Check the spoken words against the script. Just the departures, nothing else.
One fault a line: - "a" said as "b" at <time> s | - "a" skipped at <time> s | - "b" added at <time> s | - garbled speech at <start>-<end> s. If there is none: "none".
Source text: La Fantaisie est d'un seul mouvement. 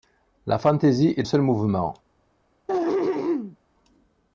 - "d'un" skipped at 1.2 s